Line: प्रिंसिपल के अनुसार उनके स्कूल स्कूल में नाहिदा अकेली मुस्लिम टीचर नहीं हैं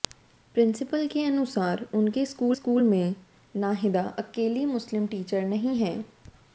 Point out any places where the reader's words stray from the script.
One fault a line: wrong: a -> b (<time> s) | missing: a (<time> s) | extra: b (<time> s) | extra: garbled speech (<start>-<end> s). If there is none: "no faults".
no faults